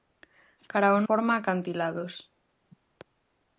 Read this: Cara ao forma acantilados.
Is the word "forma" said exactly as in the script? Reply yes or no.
yes